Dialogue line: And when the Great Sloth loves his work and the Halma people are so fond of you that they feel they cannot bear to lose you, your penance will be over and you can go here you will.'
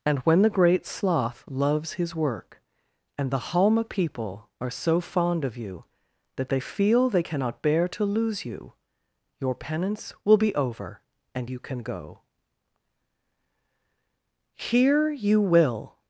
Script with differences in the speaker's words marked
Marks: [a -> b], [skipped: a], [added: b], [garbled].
And when the Great Sloth loves his work and the Halma people are so fond of you that they feel they cannot bear to lose you, your penance will be over and you can go here you will.'